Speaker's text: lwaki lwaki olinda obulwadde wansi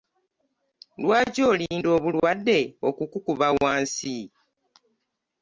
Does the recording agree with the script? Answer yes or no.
no